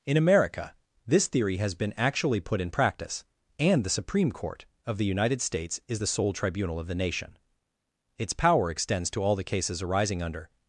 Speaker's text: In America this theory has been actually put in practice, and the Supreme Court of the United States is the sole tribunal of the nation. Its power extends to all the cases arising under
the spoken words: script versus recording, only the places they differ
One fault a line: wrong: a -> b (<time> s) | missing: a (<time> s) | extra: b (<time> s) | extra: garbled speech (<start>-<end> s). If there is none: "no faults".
no faults